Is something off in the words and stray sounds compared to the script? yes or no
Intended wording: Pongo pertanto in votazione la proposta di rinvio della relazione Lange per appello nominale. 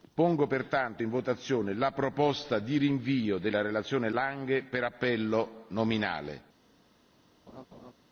yes